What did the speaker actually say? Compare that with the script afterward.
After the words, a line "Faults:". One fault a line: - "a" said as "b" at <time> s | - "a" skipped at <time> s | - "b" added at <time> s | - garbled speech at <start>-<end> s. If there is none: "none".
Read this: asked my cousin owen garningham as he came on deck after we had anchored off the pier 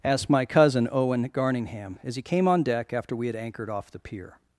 asked my cousin owen garningham as he came on deck after we had anchored off the pier
Faults:
none